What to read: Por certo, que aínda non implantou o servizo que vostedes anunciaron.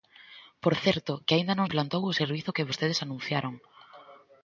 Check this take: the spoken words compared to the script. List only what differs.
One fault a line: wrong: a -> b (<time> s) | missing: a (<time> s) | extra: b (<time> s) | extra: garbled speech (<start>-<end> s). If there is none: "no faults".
no faults